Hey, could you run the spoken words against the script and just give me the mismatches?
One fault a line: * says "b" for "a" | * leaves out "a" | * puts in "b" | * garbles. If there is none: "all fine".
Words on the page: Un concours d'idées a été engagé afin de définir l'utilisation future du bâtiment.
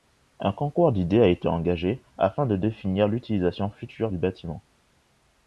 all fine